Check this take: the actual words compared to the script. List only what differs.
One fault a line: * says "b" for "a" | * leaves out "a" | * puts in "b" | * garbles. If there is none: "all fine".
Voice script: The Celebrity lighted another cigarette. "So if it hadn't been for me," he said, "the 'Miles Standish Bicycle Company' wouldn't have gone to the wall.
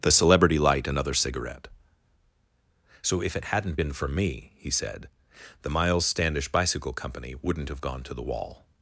* says "light" for "lighted"